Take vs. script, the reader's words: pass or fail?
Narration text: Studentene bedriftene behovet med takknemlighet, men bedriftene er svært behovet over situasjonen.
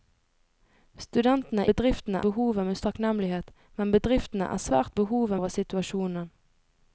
pass